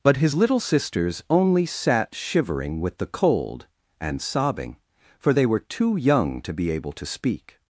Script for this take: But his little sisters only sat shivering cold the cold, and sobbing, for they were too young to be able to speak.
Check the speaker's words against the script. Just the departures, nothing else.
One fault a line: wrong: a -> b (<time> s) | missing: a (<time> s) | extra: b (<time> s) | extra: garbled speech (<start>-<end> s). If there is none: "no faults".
wrong: cold -> with (2.8 s)